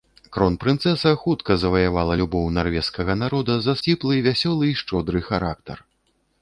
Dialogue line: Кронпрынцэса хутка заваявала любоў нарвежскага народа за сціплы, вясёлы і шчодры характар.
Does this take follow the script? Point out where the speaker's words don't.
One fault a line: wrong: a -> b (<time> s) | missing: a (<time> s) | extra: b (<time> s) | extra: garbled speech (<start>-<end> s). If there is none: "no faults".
no faults